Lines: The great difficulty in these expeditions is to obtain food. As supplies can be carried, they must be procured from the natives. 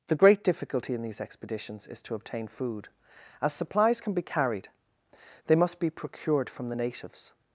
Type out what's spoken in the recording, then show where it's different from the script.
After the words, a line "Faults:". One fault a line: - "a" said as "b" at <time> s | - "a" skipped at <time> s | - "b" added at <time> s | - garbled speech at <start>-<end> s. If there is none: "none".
The great difficulty in these expeditions is to obtain food. As supplies can be carried, they must be procured from the natives.
Faults:
none